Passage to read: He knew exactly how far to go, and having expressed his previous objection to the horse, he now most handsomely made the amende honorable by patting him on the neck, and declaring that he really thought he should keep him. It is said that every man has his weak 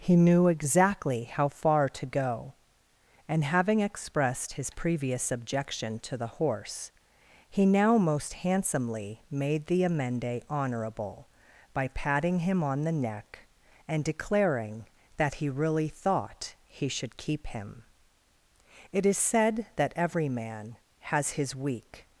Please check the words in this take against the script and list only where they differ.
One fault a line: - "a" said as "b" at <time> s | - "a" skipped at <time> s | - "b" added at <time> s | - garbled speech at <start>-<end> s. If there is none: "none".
none